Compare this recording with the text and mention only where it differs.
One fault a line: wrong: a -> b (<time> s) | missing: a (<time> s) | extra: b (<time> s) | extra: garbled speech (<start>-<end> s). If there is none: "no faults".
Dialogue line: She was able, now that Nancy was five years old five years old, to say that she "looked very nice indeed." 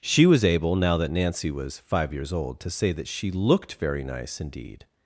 missing: five years old (2.6 s)